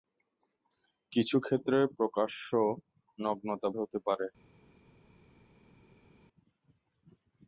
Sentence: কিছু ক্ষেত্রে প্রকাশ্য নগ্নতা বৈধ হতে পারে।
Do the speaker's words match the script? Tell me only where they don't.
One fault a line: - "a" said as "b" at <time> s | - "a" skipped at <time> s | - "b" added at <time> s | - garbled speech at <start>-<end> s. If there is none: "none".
- "বৈধ" skipped at 3.7 s